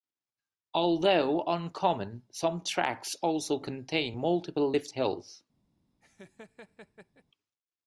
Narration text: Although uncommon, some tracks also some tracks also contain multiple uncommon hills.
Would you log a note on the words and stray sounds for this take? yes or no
yes